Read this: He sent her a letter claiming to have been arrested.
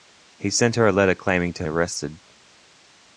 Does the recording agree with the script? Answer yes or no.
no